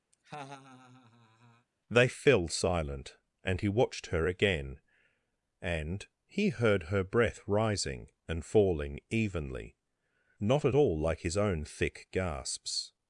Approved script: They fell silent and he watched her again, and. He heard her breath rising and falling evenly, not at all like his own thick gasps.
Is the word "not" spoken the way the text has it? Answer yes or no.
yes